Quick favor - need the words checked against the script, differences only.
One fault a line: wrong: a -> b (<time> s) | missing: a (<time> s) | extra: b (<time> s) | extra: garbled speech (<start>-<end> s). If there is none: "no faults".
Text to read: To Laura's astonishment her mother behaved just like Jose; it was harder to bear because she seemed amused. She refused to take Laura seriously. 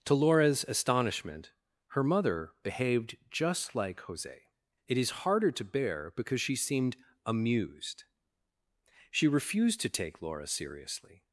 wrong: was -> is (5.0 s)